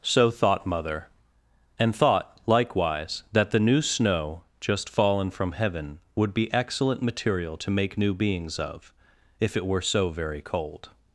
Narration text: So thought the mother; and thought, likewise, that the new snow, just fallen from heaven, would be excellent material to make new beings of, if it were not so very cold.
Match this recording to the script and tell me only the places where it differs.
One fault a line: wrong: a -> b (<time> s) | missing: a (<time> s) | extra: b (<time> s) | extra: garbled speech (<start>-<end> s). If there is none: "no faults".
missing: the (0.7 s)
missing: not (9.8 s)